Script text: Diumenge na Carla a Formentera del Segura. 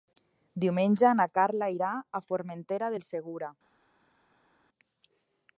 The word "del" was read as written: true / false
true